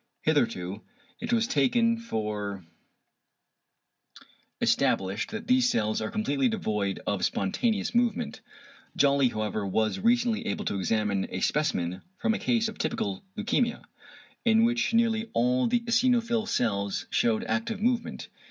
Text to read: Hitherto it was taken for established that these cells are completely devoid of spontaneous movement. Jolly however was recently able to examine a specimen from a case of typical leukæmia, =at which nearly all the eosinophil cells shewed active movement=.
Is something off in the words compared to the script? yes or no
yes